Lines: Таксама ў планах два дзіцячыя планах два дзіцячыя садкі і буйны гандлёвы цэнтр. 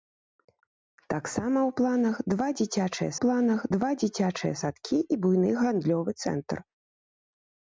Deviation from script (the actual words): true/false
false